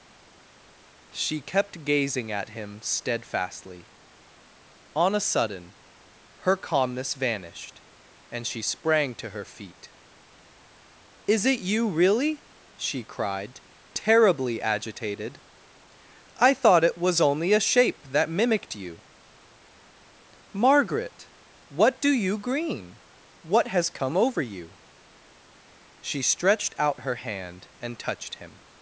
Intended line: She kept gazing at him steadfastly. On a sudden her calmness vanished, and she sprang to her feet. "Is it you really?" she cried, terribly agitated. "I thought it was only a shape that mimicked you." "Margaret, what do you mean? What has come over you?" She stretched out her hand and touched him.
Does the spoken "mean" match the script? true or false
false